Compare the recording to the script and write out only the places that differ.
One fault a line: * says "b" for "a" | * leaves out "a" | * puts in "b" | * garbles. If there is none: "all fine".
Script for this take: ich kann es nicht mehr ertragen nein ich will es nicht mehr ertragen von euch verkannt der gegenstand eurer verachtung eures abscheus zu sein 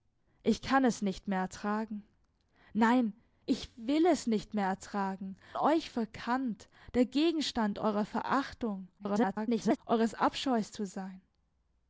* leaves out "von"
* garbles